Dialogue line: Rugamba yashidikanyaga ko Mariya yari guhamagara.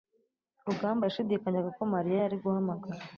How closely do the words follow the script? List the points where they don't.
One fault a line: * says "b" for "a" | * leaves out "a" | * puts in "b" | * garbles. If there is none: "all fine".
all fine